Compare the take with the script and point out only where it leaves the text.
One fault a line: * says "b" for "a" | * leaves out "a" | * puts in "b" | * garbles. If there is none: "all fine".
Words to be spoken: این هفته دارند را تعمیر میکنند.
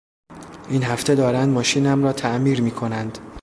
* puts in "ماشینم"